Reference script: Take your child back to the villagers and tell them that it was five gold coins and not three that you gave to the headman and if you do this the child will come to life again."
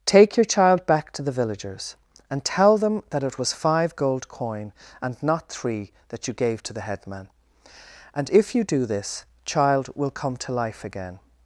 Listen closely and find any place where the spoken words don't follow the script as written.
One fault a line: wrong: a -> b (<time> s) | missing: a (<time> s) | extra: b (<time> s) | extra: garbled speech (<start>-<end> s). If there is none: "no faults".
wrong: coins -> coin (4.3 s)
missing: the (9.2 s)